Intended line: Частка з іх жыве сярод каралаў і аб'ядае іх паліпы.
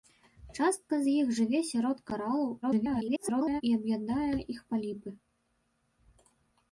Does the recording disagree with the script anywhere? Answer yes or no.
yes